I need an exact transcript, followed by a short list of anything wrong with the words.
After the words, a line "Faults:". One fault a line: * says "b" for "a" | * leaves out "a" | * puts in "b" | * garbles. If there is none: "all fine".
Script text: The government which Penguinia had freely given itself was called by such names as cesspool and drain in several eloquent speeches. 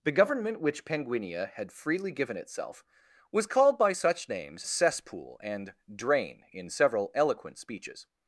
The government which Penguinia had freely given itself was called by such names cesspool and drain in several eloquent speeches.
Faults:
* leaves out "as"